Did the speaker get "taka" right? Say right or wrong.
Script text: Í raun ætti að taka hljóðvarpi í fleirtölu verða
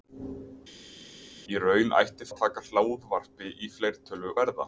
right